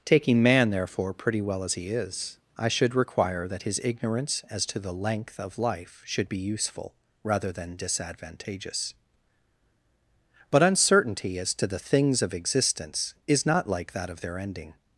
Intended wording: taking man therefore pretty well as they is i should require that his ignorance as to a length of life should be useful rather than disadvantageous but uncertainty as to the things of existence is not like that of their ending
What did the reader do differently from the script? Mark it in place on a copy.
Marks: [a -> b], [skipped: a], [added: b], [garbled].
taking man therefore pretty well as [they -> he] is i should require that his ignorance as to [a -> the] length of life should be useful rather than disadvantageous but uncertainty as to the things of existence is not like that of their ending